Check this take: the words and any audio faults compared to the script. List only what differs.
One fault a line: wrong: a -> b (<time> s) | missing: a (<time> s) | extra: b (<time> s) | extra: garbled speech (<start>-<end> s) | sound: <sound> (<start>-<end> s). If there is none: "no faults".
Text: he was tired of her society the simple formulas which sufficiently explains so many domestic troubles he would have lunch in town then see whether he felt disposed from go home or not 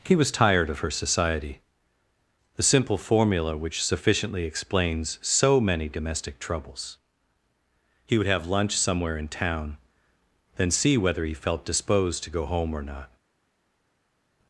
wrong: formulas -> formula (3.0 s)
extra: somewhere (8.8 s)
wrong: from -> to (12.2 s)